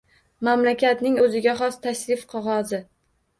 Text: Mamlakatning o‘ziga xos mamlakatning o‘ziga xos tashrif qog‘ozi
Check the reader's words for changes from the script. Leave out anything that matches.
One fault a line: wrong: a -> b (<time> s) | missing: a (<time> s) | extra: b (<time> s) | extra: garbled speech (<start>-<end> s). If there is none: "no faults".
missing: mamlakatning o‘ziga xos (1.8 s)